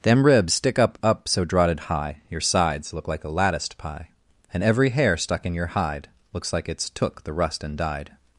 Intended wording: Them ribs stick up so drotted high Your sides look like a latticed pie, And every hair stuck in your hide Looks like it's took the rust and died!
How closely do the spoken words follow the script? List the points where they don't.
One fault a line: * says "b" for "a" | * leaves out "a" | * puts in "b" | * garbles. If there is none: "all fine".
* puts in "up"